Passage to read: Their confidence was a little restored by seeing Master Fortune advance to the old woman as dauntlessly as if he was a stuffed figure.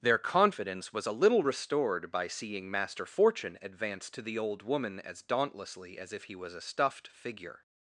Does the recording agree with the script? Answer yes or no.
yes